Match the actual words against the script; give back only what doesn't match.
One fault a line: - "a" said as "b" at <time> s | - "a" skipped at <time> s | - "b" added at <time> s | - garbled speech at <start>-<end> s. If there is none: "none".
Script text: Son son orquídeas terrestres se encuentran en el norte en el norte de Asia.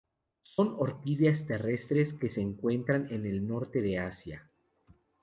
- "son" skipped at 0.8 s
- "que" added at 2.1 s
- "en el norte" skipped at 3.8 s